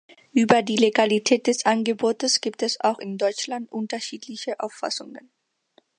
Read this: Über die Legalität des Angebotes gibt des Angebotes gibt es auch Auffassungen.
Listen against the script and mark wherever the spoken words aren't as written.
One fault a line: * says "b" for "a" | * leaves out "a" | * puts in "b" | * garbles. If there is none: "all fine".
* says "es auch in Deutschland unterschiedliche" for "des Angebotes gibt es auch"